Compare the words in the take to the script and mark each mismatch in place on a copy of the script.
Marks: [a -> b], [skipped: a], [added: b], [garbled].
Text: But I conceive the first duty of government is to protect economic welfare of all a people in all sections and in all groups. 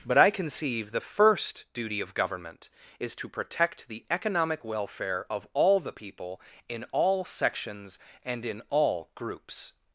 But I conceive the first duty of government is to protect [added: the] economic welfare of all [a -> the] people in all sections and in all groups.